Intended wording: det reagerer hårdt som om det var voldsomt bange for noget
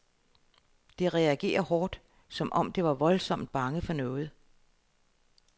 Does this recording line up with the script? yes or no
yes